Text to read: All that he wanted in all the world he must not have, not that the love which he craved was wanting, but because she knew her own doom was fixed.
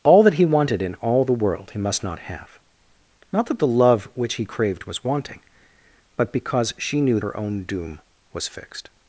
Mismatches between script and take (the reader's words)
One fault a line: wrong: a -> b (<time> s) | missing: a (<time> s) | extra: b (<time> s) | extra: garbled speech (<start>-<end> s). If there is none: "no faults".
no faults